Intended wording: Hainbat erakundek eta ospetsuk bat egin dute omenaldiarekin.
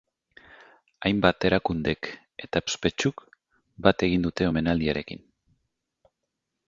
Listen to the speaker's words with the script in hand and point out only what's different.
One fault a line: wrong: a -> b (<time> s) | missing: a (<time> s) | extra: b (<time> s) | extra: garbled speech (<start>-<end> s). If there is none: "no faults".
no faults